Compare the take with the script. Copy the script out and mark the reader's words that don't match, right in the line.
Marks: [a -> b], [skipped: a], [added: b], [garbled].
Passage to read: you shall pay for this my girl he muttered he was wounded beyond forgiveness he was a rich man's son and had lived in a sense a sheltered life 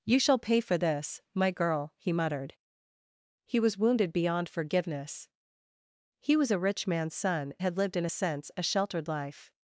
you shall pay for this my girl he muttered he was wounded beyond forgiveness he was a rich man's son [skipped: and] had lived in a sense a sheltered life